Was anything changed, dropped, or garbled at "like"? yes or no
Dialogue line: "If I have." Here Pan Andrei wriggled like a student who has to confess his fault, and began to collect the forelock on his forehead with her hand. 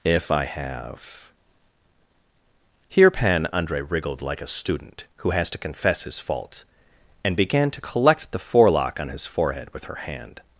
no